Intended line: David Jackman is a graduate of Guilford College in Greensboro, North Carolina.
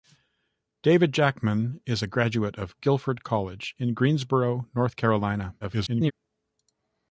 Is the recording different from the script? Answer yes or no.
yes